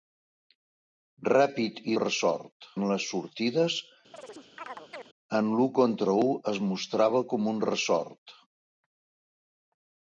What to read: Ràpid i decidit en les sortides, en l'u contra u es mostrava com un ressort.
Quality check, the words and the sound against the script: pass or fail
fail